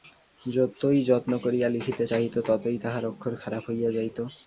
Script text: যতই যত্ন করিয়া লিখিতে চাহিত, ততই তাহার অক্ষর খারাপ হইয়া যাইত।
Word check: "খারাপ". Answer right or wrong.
right